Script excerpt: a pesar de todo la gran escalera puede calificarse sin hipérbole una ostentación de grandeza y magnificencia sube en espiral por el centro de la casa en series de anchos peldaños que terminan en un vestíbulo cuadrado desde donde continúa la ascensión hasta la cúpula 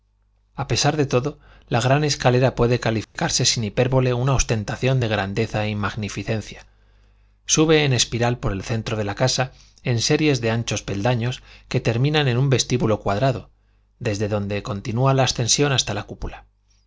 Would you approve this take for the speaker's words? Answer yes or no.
yes